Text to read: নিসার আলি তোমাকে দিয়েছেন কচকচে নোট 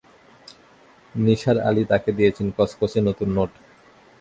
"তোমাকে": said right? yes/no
no